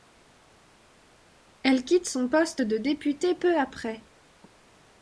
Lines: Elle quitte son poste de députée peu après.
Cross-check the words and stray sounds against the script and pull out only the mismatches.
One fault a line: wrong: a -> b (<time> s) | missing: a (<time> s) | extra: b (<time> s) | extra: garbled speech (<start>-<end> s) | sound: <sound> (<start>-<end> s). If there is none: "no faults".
no faults